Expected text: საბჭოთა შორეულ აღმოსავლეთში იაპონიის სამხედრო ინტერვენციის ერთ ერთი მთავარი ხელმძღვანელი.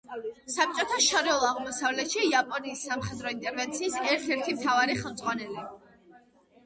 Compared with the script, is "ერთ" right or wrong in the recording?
right